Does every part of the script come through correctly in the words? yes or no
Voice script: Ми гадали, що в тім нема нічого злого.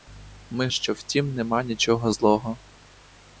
no